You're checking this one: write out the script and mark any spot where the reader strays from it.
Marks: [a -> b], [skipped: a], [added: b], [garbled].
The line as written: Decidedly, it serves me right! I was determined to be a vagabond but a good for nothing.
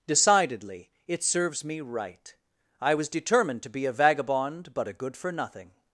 Decidedly, it serves me right! I was determined to be a vagabond but a good for nothing.